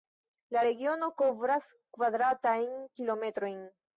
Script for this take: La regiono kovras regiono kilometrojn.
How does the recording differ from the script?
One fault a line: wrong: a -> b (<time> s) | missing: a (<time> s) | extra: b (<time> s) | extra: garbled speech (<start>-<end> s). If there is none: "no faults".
wrong: regiono -> kvadratajn (2.0 s)